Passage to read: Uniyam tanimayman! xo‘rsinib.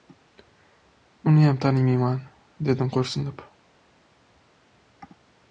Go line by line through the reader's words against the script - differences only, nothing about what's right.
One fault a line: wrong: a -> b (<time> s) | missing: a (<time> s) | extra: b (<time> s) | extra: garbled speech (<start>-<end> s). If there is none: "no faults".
extra: dedim (2.7 s)